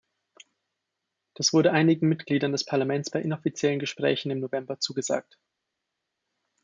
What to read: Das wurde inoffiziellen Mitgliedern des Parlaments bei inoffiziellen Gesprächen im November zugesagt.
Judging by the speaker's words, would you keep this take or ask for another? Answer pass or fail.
fail